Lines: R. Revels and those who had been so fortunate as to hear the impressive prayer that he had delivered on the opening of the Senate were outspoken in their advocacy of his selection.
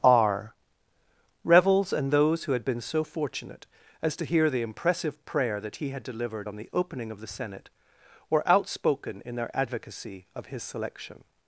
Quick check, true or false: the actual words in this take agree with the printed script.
true